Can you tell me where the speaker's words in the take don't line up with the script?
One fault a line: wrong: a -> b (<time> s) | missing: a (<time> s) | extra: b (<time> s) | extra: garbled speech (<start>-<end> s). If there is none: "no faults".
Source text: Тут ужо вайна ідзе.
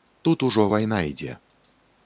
no faults